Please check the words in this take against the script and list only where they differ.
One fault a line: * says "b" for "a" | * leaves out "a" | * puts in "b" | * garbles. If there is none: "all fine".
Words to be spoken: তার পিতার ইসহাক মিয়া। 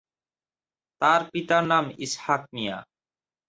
* puts in "নাম"